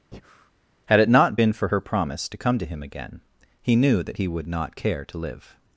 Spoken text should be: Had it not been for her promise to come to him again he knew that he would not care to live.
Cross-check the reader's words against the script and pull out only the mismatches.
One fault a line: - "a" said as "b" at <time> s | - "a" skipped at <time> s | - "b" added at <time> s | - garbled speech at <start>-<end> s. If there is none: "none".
none